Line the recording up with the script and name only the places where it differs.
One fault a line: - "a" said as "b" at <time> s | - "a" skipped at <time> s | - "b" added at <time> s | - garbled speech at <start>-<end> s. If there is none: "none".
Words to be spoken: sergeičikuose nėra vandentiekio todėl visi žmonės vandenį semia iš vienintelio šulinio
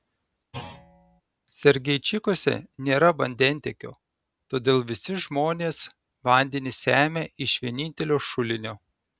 none